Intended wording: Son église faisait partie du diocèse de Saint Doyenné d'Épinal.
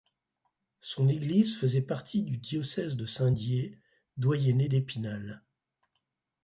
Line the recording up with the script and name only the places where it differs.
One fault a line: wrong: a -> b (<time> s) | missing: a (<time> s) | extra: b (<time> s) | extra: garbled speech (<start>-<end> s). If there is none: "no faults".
extra: Dié (3.3 s)